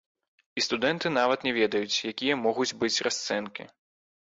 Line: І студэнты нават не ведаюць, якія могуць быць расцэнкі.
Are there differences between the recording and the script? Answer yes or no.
no